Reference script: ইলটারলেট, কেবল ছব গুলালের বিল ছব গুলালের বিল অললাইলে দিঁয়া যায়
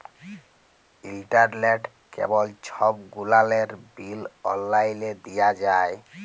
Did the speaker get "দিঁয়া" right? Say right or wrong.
right